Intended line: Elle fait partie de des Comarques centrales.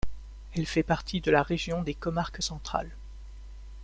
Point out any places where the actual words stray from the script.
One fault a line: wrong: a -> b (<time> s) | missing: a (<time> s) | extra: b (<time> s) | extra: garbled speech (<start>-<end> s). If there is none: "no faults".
extra: la région (1.3 s)